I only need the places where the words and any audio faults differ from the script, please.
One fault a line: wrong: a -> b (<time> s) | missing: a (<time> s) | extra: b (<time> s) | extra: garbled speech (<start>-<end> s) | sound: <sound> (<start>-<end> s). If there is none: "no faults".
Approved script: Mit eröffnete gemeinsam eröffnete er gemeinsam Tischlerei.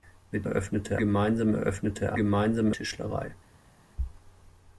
no faults